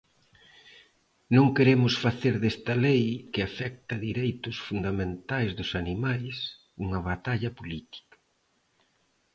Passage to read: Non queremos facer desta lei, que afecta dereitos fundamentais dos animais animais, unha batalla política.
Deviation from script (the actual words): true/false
true